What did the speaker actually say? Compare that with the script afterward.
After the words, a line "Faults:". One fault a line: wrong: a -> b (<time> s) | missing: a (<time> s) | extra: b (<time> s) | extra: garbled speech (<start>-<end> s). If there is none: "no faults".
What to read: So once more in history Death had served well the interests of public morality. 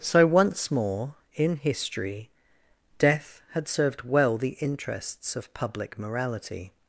So once more in history Death had served well the interests of public morality.
Faults:
no faults